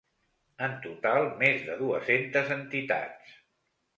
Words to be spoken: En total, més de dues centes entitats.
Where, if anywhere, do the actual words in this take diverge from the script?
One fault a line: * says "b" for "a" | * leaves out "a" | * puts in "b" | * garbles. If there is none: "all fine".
all fine